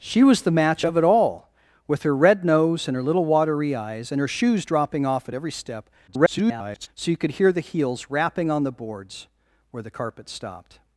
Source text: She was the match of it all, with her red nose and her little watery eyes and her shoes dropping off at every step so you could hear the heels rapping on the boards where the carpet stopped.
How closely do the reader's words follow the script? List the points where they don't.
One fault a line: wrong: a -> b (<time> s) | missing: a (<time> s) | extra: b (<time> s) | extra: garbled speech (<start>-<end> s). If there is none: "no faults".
extra: garbled speech (6.1-6.9 s)